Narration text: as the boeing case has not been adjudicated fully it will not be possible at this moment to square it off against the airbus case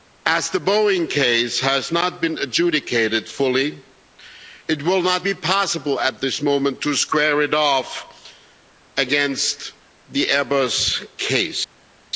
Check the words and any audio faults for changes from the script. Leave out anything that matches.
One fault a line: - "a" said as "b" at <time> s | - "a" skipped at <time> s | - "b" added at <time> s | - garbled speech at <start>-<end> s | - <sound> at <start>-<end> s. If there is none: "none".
none